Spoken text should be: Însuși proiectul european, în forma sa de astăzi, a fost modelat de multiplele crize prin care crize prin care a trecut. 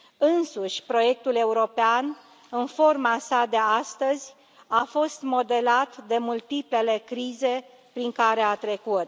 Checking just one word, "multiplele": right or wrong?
right